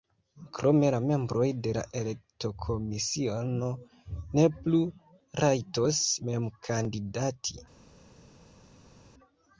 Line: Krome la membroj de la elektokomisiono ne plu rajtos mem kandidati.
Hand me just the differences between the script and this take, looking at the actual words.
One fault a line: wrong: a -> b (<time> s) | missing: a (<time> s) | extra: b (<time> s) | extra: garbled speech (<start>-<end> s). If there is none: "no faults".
no faults